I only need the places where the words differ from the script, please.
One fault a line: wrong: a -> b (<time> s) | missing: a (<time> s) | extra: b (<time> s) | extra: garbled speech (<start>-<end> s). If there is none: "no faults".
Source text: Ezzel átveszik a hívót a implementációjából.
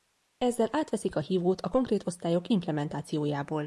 extra: konkrét osztályok (1.7 s)